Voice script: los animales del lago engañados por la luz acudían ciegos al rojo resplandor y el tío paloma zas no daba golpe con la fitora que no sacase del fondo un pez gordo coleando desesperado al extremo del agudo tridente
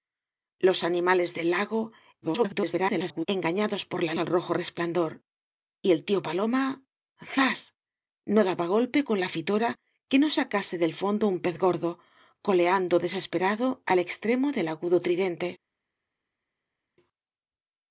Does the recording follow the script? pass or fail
fail